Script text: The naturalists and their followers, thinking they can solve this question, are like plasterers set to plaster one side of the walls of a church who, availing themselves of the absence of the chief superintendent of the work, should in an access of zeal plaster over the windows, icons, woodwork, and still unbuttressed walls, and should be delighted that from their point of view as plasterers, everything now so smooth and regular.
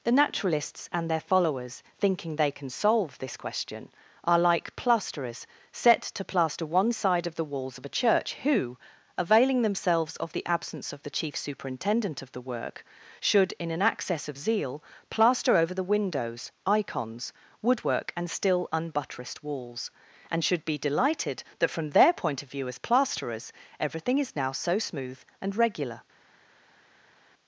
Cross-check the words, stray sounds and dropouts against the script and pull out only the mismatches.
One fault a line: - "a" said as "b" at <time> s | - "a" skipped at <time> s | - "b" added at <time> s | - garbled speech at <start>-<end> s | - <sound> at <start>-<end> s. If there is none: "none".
- "is" added at 24.2 s